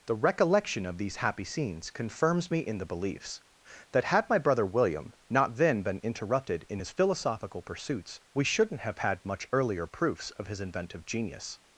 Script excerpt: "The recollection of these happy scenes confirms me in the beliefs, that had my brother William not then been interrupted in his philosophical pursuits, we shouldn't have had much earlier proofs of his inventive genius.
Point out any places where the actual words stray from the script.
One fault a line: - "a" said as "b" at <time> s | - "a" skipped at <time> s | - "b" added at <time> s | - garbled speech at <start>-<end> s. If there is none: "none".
none